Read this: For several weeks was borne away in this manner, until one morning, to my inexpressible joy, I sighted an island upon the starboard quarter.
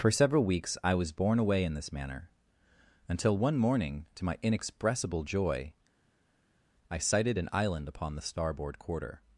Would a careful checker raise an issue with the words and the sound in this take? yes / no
yes